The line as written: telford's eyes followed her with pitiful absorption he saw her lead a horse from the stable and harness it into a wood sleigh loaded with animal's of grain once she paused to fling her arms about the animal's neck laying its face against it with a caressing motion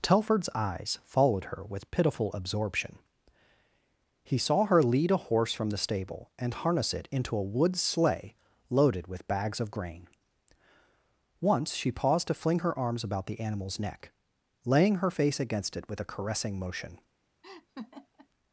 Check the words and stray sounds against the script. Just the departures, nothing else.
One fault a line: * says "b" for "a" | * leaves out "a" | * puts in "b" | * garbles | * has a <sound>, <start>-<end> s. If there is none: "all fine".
* says "bags" for "animal's"
* says "her" for "its"
* has a laugh, 17.4-18.3 s